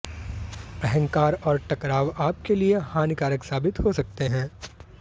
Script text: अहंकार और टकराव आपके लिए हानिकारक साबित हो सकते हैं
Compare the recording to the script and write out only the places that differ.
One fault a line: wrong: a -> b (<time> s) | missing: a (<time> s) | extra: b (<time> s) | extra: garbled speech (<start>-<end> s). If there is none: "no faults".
no faults